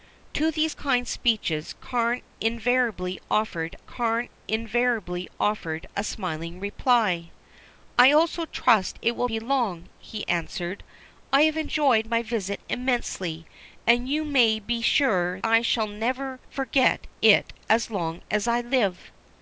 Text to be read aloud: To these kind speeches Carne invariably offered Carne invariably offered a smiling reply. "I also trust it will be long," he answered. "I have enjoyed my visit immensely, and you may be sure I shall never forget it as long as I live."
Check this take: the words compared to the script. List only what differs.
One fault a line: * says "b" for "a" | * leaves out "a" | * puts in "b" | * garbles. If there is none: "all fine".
all fine